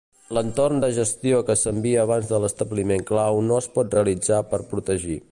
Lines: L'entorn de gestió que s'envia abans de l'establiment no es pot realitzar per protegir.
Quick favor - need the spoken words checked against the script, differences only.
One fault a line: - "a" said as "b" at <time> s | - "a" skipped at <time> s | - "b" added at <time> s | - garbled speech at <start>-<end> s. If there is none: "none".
- "clau" added at 3.1 s